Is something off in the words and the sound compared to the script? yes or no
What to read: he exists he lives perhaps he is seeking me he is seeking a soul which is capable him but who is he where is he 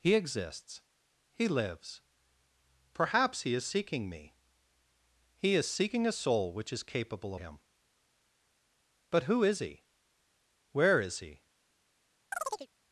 yes